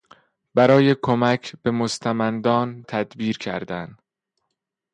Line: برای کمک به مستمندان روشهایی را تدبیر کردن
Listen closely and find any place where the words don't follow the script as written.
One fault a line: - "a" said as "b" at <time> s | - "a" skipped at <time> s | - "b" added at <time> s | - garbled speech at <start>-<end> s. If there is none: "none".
- "روشهایی را" skipped at 2.8 s